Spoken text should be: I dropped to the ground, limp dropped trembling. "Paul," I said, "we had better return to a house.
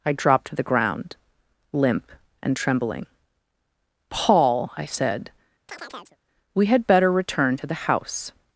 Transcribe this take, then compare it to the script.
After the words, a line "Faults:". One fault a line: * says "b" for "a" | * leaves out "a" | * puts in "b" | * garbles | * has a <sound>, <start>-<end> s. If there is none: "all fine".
I dropped to the ground, limp and trembling. "Paul," I said, "we had better return to the house.
Faults:
* says "and" for "dropped"
* has a chirp, 5.7-6.2 s
* says "the" for "a"